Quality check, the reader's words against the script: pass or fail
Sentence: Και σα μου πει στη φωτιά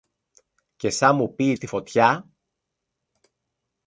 pass